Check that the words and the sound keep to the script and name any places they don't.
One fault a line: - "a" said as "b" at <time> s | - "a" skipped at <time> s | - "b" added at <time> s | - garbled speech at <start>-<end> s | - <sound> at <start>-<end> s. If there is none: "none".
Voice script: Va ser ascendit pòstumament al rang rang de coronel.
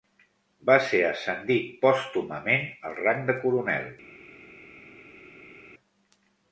- "rang" skipped at 3.2 s